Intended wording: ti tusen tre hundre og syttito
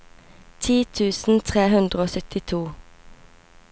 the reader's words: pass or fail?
pass